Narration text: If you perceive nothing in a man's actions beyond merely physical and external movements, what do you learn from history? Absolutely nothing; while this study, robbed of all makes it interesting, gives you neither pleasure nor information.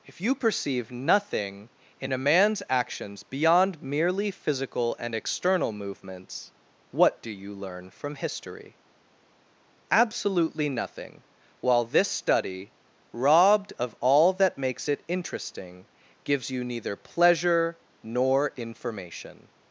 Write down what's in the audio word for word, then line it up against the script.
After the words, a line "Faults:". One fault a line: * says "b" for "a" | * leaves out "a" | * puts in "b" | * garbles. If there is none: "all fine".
If you perceive nothing in a man's actions beyond merely physical and external movements, what do you learn from history? Absolutely nothing; while this study, robbed of all that makes it interesting, gives you neither pleasure nor information.
Faults:
* puts in "that"